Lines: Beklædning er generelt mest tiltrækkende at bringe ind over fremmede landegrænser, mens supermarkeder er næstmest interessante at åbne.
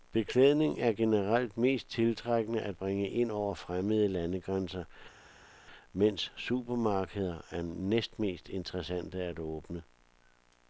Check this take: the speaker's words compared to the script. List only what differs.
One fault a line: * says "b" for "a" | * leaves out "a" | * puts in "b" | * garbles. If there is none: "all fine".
all fine